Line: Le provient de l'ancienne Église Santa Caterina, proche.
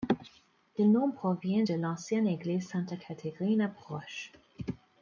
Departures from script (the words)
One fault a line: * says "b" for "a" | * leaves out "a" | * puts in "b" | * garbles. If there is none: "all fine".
* puts in "nom"